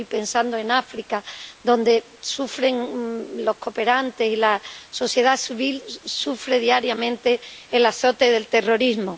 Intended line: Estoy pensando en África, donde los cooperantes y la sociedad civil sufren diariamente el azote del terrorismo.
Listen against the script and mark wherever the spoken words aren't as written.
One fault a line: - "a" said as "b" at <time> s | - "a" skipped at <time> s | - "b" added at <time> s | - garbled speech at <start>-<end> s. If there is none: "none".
none